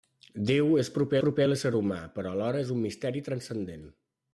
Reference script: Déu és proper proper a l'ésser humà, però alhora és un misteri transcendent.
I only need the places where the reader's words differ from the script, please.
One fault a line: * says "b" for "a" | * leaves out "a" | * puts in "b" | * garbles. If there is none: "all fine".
all fine